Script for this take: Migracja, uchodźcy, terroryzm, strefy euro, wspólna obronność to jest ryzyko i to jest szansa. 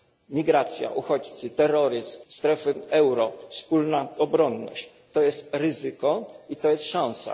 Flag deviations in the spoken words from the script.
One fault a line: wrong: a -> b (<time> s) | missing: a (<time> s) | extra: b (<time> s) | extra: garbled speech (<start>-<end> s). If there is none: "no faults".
no faults